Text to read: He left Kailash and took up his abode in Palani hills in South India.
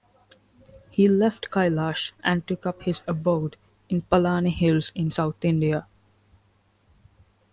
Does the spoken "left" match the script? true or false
true